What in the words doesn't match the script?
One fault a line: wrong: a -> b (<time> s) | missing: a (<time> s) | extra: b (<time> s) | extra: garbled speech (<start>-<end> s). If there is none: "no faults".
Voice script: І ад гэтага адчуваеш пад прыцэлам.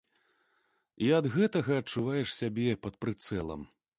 extra: сябе (2.4 s)